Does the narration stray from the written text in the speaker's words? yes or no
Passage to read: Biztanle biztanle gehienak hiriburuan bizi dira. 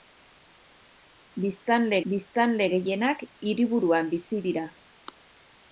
no